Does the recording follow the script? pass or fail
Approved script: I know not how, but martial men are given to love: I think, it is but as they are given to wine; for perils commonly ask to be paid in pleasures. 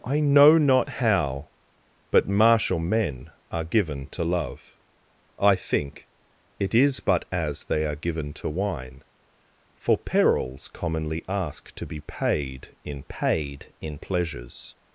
fail